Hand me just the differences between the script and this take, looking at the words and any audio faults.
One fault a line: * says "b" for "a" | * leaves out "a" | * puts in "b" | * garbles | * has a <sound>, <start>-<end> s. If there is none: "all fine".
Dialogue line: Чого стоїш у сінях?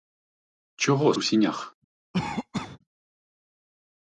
* leaves out "стоїш"
* has a cough, 2.1-2.8 s